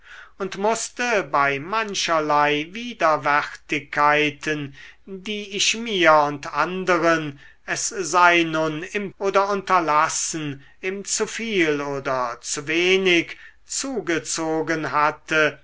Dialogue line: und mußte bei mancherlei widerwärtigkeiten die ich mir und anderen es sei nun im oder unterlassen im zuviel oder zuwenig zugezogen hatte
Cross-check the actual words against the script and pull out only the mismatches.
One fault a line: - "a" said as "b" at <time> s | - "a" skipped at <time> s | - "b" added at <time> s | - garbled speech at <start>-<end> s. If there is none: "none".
none